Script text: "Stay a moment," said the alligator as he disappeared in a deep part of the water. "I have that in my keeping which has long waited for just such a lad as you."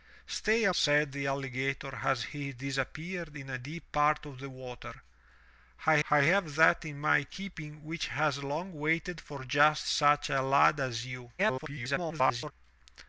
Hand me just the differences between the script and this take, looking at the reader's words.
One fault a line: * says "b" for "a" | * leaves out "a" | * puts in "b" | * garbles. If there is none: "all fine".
* leaves out "moment"
* puts in "I"
* garbles